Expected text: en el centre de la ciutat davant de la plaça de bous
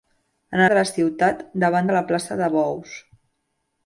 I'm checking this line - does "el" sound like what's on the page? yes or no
no